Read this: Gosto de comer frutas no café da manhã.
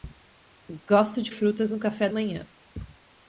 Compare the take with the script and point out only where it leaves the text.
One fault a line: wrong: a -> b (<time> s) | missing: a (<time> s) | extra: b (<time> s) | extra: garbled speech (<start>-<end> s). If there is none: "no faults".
missing: comer (1.3 s)
missing: da (2.1 s)